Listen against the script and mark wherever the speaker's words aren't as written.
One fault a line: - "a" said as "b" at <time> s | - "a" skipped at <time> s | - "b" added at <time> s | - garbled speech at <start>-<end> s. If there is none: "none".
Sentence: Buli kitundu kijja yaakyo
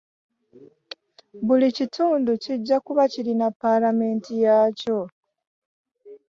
- "kuba kirina Paalamenti" added at 2.9 s